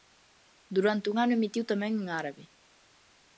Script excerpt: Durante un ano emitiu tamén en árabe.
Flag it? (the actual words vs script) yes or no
no